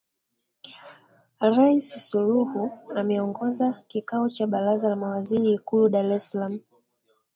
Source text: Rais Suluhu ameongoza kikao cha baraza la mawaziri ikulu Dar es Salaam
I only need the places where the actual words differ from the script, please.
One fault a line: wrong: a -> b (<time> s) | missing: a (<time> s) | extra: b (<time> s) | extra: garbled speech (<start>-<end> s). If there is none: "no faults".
no faults